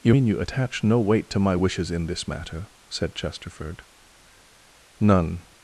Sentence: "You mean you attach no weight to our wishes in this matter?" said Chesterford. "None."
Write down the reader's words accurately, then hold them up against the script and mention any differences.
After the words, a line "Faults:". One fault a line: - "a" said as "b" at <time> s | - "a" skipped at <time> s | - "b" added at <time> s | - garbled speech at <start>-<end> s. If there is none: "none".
"You mean you attach no weight to my wishes in this matter?" said Chesterford. "None."
Faults:
- "our" said as "my" at 1.4 s